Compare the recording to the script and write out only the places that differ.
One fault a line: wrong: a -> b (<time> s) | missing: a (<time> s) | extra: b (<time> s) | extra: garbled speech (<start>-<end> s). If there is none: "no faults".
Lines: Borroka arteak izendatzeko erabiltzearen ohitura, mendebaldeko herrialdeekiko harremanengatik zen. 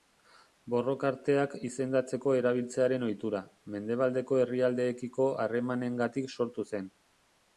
extra: sortu (6.4 s)